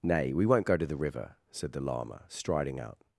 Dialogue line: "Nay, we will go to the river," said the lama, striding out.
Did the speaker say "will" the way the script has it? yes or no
no